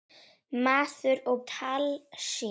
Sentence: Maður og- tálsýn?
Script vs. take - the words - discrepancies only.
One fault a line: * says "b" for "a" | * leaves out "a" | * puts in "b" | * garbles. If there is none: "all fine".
all fine